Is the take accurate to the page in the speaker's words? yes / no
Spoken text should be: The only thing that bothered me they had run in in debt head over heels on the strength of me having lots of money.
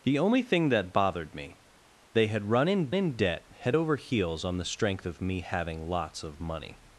yes